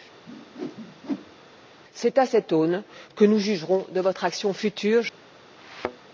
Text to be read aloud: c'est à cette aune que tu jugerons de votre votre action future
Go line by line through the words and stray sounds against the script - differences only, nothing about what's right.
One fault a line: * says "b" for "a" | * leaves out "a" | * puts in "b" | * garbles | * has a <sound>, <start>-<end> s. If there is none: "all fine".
* has a whoosh, 0.3-1.4 s
* says "nous" for "tu"
* leaves out "votre"
* has a thud, 5.6-6.1 s